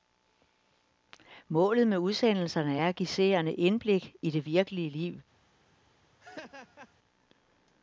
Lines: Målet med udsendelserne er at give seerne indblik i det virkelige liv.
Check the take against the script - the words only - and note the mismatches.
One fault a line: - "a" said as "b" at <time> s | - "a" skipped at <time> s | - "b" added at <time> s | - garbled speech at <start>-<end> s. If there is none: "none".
none